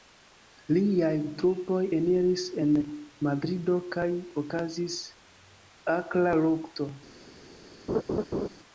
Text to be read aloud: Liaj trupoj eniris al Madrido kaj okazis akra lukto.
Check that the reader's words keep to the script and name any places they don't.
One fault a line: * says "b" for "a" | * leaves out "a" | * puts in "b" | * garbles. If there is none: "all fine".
* says "en" for "al"